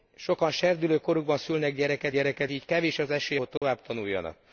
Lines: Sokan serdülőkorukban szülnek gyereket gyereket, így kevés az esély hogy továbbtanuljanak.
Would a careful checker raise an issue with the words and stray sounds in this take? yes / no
yes